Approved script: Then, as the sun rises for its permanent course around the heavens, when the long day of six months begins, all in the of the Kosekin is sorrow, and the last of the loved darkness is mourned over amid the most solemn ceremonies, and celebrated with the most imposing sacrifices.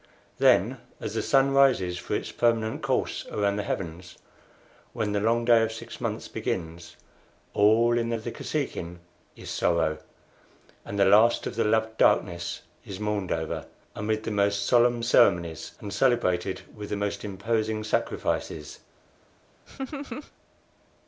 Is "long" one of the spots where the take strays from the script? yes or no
no